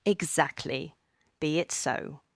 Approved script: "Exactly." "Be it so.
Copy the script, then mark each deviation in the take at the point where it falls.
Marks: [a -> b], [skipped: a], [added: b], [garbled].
"Exactly." "Be it so.